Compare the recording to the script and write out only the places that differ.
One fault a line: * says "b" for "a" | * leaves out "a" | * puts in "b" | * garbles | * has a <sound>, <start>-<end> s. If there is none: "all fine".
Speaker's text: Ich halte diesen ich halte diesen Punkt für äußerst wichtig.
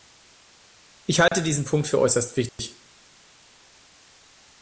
* has a dropout, 1.3-1.3 s
* leaves out "ich halte diesen"
* has a dropout, 2.5-2.6 s